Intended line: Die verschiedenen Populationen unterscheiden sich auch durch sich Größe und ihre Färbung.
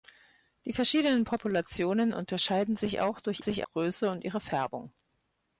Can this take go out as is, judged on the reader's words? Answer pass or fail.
pass